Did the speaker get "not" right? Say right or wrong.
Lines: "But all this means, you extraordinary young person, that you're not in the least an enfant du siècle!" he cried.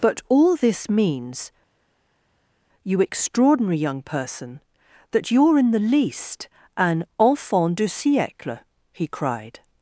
wrong